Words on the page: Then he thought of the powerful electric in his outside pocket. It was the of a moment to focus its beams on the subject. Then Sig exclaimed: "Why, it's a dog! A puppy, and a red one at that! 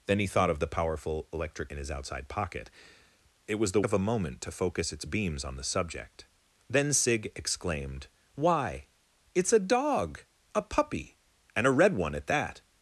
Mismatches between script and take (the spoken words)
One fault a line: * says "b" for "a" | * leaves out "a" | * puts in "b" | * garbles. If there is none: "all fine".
all fine